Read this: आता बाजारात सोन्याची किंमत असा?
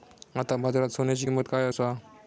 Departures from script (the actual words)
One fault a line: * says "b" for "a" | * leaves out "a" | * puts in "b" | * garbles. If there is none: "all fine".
* puts in "काय"